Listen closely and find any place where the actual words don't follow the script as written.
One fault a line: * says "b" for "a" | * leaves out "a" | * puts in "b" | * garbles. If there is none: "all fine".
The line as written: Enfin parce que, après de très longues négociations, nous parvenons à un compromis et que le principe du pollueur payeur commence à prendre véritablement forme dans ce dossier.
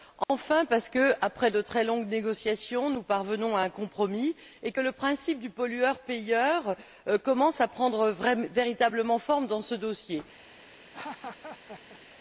all fine